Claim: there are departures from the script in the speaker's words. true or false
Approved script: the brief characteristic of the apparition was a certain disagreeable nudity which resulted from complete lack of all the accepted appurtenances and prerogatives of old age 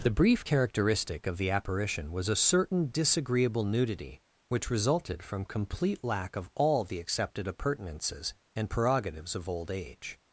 false